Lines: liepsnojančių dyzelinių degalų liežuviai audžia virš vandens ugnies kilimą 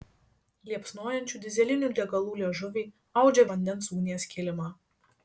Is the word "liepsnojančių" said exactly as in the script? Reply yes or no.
yes